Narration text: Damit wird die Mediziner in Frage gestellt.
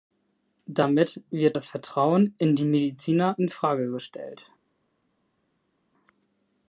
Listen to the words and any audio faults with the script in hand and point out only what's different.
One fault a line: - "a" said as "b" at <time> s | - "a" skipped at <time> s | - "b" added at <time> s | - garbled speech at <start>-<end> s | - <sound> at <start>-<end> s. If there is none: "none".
- "das Vertrauen in" added at 1.5 s